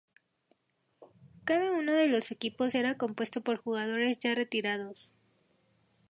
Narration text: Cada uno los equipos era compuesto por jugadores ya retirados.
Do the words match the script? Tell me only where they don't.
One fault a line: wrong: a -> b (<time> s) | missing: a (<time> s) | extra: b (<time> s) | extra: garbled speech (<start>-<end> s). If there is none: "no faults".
extra: de (1.9 s)